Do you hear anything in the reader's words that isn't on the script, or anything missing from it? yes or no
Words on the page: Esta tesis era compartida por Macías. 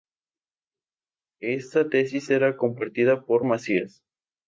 no